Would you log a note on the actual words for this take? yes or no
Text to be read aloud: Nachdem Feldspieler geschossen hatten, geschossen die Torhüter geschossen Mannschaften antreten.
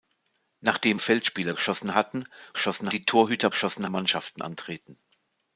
no